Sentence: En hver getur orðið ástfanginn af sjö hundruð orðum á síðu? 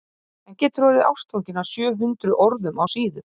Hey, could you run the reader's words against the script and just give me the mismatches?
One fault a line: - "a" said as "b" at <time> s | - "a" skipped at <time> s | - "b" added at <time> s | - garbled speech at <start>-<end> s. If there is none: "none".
- "hver" skipped at 0.6 s